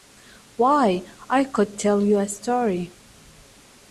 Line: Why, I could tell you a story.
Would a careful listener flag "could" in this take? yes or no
no